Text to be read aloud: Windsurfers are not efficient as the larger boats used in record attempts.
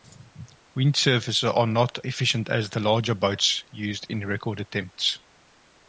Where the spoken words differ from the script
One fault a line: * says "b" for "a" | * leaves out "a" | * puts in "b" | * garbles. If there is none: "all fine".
all fine